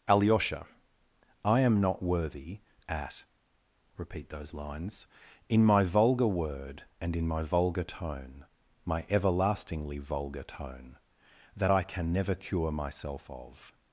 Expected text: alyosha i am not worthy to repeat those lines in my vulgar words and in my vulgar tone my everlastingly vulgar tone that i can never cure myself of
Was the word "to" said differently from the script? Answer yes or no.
yes